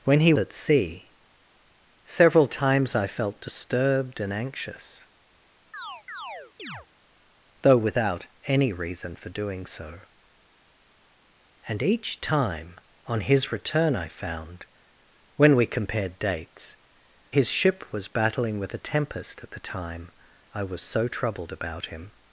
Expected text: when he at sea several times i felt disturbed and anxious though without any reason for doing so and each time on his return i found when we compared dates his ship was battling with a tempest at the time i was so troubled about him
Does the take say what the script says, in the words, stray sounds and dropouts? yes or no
no